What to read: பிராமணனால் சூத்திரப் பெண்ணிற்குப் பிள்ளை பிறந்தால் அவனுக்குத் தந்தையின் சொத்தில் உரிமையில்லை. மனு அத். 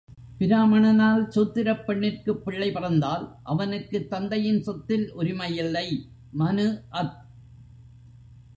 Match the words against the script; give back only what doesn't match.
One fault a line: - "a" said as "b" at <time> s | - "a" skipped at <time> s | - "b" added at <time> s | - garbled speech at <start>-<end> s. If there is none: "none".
none